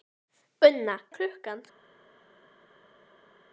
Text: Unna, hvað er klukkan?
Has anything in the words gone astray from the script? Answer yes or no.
yes